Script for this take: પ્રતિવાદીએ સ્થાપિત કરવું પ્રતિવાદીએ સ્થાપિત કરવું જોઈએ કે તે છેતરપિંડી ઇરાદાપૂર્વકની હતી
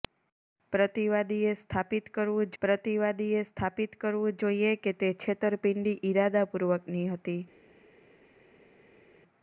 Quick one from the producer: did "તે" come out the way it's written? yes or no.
yes